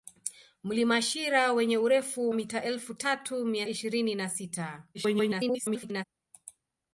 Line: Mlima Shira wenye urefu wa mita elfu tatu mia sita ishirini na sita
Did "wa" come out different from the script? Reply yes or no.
yes